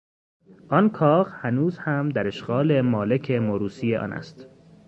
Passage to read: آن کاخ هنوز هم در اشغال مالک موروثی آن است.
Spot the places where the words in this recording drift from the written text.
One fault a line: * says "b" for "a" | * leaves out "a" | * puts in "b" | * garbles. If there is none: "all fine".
all fine